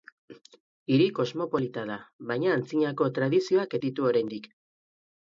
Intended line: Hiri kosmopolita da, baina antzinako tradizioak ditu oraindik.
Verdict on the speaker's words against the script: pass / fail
pass